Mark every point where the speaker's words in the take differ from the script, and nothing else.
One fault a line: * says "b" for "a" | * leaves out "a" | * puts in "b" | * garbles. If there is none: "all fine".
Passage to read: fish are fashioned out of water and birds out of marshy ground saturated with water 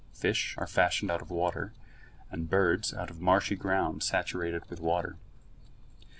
all fine